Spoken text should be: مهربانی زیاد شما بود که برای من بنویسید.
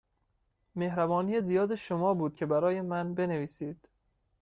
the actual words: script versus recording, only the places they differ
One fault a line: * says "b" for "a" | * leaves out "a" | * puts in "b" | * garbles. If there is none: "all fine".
all fine